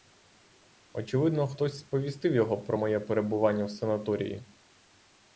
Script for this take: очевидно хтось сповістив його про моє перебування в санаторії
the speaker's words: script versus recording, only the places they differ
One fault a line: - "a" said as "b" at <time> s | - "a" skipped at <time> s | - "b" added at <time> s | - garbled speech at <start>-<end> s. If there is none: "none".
none